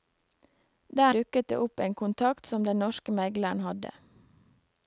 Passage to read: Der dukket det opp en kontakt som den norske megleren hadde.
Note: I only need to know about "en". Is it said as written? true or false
true